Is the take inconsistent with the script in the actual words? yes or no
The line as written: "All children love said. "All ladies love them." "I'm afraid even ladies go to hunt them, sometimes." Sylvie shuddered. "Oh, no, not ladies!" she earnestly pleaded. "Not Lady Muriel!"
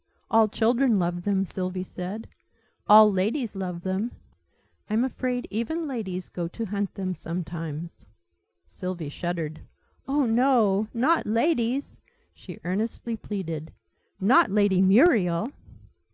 yes